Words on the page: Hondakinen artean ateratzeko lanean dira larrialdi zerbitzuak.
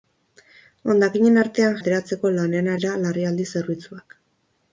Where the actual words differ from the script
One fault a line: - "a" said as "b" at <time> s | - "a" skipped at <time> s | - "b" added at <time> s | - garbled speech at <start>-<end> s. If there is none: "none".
none